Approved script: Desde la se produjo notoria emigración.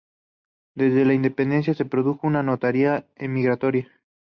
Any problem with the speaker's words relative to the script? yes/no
yes